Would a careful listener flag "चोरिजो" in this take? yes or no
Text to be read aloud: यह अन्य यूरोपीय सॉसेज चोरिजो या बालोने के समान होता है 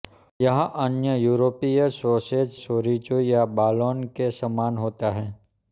no